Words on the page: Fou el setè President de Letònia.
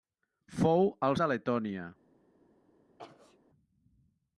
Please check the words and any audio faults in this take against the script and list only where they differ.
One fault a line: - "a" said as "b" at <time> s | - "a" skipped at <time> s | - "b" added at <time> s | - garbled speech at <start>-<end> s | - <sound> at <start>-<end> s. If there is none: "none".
- "setè President" skipped at 1.2 s
- sneeze at 3.0-3.4 s